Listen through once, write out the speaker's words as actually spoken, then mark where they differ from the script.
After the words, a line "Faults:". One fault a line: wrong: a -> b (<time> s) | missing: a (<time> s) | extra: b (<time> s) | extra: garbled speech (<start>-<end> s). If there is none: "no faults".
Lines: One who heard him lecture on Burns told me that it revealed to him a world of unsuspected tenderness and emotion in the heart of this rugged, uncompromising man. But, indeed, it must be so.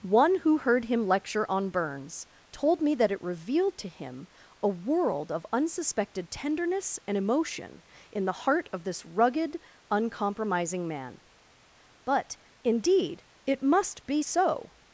One who heard him lecture on Burns told me that it revealed to him a world of unsuspected tenderness and emotion in the heart of this rugged, uncompromising man. But, indeed, it must be so.
Faults:
no faults